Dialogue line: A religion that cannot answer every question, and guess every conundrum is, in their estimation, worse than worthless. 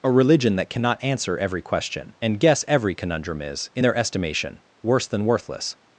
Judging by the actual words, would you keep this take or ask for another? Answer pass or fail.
pass